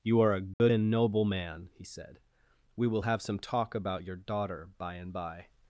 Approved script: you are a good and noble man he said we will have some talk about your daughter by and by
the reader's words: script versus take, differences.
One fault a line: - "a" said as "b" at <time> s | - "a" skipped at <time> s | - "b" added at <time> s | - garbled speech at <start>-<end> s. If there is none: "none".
none